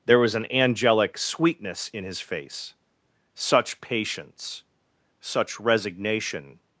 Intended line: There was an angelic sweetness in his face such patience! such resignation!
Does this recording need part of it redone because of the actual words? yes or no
no